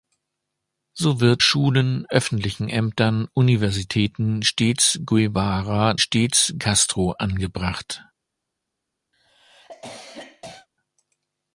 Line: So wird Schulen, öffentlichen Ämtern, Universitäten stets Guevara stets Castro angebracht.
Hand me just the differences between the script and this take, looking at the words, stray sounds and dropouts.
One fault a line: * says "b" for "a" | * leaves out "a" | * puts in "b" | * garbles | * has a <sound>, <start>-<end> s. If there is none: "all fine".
* has a cough, 9.1-10.7 s